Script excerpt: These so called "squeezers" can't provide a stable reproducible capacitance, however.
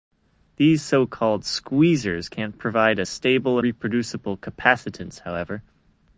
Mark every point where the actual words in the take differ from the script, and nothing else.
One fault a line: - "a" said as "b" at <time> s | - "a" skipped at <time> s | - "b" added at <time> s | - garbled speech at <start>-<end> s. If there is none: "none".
none